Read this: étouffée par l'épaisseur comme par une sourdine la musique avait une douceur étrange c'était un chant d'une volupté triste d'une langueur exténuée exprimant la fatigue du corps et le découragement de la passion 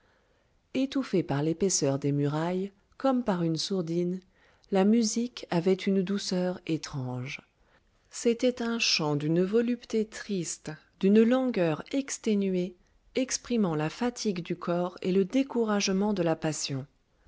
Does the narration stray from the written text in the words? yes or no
yes